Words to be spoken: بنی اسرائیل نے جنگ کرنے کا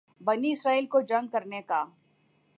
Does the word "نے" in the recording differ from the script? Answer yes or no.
yes